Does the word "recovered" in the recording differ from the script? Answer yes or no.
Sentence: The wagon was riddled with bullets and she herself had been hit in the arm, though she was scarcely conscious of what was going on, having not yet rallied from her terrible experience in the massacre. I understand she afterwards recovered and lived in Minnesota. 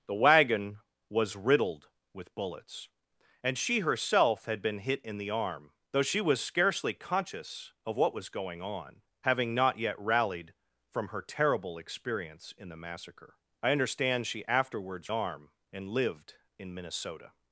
yes